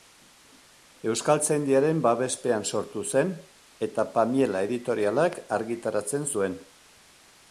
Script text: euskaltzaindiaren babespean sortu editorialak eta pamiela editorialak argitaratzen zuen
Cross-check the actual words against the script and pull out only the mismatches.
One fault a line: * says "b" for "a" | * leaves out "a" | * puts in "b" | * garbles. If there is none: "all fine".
* says "zen" for "editorialak"